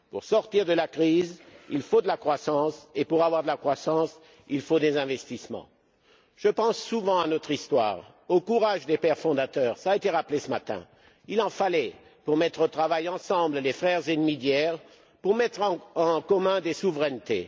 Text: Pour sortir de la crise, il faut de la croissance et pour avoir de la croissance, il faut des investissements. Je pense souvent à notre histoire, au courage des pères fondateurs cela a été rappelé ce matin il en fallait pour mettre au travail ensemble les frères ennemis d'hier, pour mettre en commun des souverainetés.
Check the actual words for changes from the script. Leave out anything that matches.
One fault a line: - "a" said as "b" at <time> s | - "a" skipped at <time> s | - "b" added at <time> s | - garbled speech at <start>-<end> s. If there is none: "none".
none